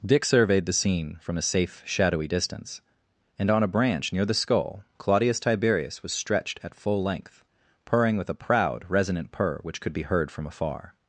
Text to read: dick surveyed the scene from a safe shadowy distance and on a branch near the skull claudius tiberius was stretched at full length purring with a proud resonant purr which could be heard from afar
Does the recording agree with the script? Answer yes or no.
yes